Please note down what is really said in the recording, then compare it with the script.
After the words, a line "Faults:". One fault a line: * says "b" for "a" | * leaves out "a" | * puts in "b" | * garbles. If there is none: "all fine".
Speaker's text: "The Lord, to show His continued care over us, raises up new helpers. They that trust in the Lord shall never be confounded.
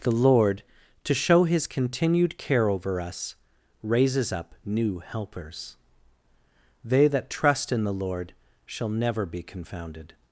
"The Lord, to show His continued care over us, raises up new helpers. They that trust in the Lord shall never be confounded.
Faults:
all fine